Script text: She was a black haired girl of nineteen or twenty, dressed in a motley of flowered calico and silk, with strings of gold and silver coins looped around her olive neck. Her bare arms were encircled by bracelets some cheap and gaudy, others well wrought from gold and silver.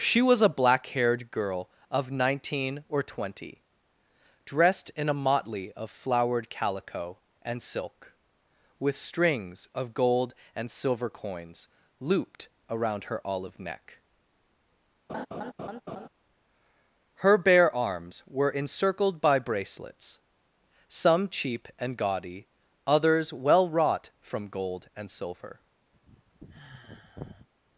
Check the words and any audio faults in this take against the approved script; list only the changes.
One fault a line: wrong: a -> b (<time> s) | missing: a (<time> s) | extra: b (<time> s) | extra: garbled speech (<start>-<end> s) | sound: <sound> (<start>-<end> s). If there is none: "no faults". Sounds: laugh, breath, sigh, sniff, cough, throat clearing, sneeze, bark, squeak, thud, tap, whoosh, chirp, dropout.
sound: laugh (15.1-16.1 s)
sound: sigh (25.9-27.5 s)